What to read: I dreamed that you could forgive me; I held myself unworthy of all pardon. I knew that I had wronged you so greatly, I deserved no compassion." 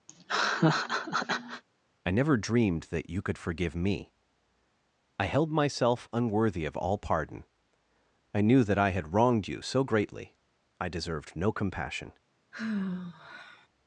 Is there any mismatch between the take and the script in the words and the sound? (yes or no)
yes